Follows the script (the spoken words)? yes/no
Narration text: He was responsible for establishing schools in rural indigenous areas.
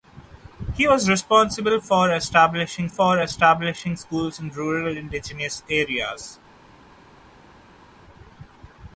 no